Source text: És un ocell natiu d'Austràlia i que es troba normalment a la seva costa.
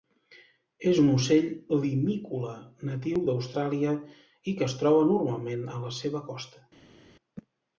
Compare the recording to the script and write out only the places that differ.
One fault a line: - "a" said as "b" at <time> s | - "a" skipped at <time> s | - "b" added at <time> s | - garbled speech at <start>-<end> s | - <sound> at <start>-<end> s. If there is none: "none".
- "limícola" added at 1.8 s